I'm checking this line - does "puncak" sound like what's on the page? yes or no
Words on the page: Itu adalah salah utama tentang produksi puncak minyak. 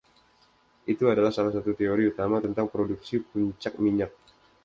yes